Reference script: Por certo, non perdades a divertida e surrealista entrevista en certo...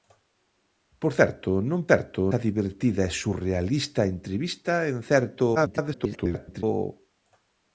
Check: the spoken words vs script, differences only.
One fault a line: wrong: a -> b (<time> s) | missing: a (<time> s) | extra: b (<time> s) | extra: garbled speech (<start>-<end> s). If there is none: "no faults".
wrong: perdades -> certo (1.9 s)
extra: garbled speech (5.5-6.6 s)